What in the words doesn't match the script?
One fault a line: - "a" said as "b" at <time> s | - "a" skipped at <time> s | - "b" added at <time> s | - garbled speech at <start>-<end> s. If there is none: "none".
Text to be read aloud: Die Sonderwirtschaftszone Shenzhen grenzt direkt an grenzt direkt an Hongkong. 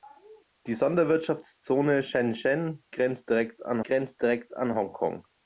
none